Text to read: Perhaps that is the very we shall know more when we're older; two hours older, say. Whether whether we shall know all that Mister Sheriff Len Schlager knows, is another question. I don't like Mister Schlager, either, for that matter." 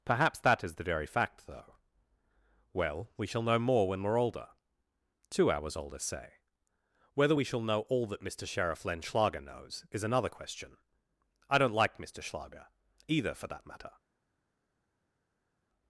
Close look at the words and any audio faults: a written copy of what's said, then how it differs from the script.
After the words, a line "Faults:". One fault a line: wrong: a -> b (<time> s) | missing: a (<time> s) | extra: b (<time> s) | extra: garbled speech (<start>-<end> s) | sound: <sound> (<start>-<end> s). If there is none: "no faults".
Perhaps that is the very fact, though, Well, we shall know more when we're older; two hours older, say. Whether we shall know all that Mister Sheriff Len Schlager knows, is another question. I don't like Mister Schlager, either, for that matter."
Faults:
extra: fact though Well (1.1 s)
missing: whether (7.3 s)